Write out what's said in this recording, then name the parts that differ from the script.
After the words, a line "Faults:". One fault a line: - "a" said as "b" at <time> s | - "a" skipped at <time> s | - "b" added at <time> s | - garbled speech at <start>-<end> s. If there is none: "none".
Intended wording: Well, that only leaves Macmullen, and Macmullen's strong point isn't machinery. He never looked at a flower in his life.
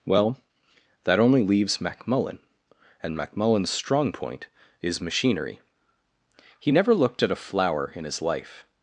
Well, that only leaves Macmullen, and Macmullen's strong point is machinery. He never looked at a flower in his life.
Faults:
- "isn't" said as "is" at 4.8 s